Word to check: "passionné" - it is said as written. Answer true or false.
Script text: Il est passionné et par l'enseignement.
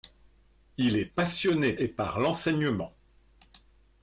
true